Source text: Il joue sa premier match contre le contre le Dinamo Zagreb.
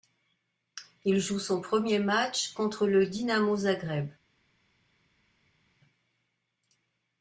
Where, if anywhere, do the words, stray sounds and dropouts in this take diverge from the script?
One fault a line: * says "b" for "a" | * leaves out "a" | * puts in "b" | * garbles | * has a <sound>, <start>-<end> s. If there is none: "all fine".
* says "son" for "sa"
* leaves out "contre le"